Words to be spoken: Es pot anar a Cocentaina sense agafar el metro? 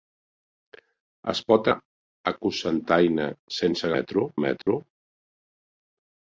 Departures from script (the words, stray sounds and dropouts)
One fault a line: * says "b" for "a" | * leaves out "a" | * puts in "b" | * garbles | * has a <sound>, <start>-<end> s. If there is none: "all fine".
* leaves out "anar"
* says "metro" for "agafar"
* has a dropout, 4.6-4.7 s